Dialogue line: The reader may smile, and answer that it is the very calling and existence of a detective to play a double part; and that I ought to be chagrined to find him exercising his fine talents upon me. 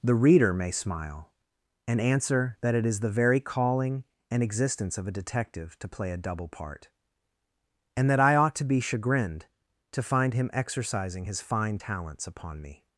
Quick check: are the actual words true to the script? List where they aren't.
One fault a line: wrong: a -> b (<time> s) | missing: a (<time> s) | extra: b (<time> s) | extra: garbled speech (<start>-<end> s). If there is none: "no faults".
no faults